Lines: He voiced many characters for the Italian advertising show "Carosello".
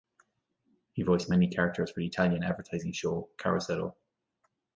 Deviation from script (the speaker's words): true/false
false